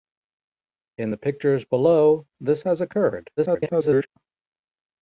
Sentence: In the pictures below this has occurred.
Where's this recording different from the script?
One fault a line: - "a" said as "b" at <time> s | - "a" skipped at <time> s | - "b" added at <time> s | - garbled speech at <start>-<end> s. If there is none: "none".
- garbled speech at 3.4-4.1 s